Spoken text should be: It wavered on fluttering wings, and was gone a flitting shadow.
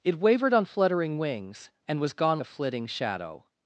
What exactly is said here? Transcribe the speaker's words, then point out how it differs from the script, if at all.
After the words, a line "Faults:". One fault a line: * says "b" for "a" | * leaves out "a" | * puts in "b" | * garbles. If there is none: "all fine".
It wavered on fluttering wings, and was gone a flitting shadow.
Faults:
all fine